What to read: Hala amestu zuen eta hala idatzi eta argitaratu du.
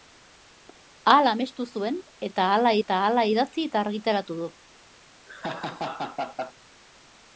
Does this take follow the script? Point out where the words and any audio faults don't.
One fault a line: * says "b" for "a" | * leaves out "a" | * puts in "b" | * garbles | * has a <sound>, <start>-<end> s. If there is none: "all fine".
* puts in "eta hala"
* has a laugh, 5.3-6.5 s